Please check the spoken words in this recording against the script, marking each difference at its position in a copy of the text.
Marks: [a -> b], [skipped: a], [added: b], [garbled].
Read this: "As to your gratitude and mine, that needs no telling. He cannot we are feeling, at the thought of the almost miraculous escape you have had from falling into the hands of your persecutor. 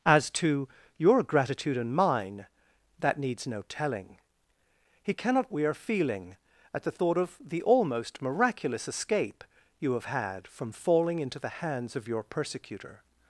"As to your gratitude and mine, that needs no telling. He cannot we are feeling, at the thought of the almost miraculous escape you have had from falling into the hands of your persecutor.